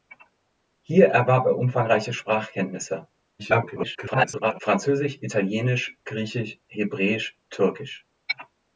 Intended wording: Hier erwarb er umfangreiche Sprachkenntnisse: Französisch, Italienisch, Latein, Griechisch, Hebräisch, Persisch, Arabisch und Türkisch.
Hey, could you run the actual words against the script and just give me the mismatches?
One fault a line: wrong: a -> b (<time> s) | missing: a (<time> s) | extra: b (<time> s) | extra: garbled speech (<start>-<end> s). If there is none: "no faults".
extra: garbled speech (3.4-4.6 s)
missing: Latein (6.0 s)
missing: Persisch Arabisch und (7.4 s)